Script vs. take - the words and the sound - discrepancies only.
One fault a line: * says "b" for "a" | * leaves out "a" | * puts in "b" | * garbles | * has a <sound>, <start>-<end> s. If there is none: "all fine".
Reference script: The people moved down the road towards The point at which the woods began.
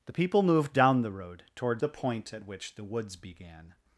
all fine